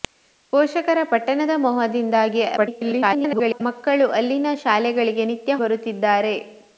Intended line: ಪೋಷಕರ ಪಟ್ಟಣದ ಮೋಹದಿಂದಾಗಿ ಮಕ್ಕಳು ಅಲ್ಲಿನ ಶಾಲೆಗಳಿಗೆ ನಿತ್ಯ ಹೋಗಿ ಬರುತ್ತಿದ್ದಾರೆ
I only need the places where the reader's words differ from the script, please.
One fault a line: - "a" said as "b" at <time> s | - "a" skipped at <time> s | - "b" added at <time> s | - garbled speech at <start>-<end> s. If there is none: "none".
- garbled speech at 2.6-3.6 s
- "ಹೋಗಿ" skipped at 5.5 s